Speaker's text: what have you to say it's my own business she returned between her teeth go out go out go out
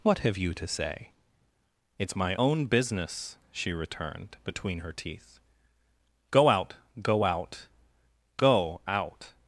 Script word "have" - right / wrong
right